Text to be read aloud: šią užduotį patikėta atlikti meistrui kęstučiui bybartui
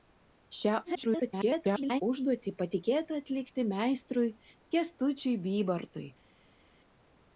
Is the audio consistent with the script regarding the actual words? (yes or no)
no